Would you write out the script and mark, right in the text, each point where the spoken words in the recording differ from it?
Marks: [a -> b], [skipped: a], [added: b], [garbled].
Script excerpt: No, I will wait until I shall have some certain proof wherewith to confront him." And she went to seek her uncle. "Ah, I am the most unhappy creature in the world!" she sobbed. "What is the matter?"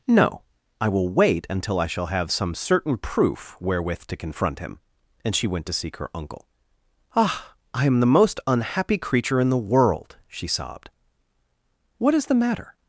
No, I will wait until I shall have some certain proof wherewith to confront him." And she went to seek her uncle. "Ah, I am the most unhappy creature in the world!" she sobbed. "What is the matter?"